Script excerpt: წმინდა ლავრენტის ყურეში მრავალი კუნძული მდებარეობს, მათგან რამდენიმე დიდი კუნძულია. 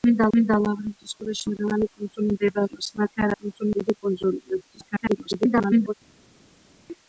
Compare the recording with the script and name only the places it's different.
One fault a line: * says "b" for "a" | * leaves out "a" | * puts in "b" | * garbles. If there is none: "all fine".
* puts in "წმინდა"
* says "კუნძული" for "რამდენიმე"
* garbles